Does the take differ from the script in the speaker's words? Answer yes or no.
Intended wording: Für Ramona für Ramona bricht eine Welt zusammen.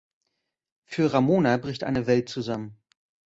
yes